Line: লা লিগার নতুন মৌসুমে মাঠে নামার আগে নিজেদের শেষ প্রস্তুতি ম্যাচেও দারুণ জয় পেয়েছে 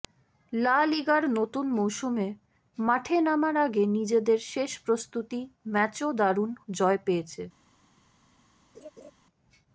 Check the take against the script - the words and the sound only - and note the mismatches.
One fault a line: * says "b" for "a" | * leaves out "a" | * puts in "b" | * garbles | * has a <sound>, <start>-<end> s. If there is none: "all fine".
* has a laugh, 8.7-9.1 s